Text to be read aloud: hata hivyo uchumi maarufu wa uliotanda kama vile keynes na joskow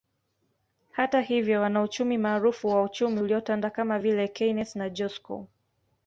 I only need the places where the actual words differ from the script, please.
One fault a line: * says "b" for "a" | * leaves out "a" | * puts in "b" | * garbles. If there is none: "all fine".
* says "wanauchumi" for "uchumi"
* puts in "uchumi"